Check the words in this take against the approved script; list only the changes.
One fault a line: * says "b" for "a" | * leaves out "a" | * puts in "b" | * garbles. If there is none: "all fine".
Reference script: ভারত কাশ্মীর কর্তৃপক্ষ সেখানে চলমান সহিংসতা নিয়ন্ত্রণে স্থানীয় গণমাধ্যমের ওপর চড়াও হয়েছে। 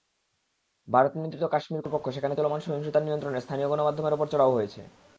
* puts in "নিয়ন্ত্রিত"